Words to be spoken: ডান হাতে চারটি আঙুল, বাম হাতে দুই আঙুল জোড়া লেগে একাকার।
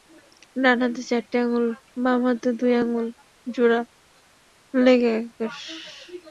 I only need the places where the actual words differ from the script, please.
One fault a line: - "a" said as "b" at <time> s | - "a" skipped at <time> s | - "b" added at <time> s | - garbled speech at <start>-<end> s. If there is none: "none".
none